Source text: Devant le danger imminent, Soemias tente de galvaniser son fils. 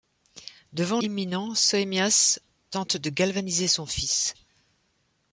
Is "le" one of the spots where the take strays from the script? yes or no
yes